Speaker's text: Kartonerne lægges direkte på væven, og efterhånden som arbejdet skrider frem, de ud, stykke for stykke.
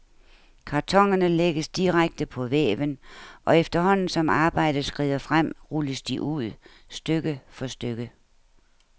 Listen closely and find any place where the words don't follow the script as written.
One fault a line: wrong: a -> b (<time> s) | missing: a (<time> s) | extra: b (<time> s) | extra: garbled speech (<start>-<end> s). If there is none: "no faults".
extra: rulles (5.7 s)